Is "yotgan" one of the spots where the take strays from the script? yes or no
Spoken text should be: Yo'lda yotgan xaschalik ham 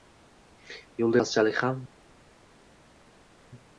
yes